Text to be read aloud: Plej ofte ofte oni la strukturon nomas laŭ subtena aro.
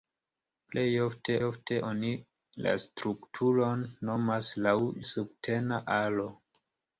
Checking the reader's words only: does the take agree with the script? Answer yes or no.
yes